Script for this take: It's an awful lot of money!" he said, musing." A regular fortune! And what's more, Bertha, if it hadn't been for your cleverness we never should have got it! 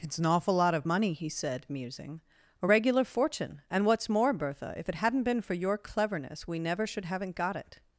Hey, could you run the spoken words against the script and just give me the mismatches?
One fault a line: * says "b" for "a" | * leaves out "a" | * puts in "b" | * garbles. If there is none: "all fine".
* says "haven't" for "have"